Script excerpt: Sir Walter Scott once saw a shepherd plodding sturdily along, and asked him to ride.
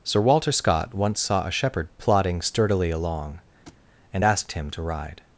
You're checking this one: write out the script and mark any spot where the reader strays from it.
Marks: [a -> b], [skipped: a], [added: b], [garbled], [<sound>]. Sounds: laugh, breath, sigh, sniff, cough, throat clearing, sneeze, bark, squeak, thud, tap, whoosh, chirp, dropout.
Sir Walter Scott once saw a shepherd plodding sturdily along, [thud] and asked him to ride.